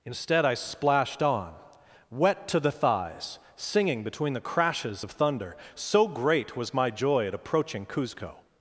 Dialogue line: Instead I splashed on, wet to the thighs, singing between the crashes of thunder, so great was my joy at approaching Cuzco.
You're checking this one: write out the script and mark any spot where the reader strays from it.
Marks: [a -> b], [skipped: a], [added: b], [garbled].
Instead I splashed on, wet to the thighs, singing between the crashes of thunder, so great was my joy at approaching Cuzco.